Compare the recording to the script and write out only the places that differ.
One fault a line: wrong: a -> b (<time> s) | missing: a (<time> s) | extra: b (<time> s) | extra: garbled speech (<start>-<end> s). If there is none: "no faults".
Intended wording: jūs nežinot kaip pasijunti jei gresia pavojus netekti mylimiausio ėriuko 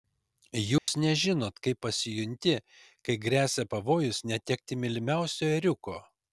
wrong: jei -> kai (3.1 s)